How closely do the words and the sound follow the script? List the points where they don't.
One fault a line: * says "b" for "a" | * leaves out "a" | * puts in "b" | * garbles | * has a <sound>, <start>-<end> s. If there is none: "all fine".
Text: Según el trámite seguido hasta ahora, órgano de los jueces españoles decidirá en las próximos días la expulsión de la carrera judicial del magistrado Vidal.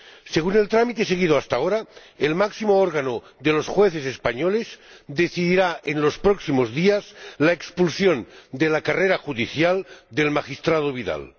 * puts in "el máximo"
* says "los" for "las"